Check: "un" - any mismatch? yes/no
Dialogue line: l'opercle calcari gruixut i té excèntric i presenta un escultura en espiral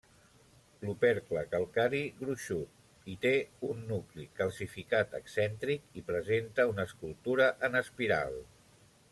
yes